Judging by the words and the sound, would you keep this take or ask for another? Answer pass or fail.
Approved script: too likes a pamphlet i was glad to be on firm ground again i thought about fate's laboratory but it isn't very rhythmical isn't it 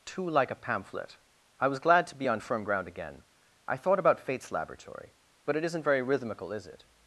fail